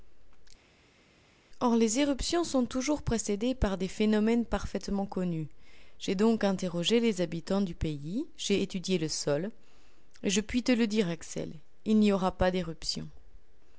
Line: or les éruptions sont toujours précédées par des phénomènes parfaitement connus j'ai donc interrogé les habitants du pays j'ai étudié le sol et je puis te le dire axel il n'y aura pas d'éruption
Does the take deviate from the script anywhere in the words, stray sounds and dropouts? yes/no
no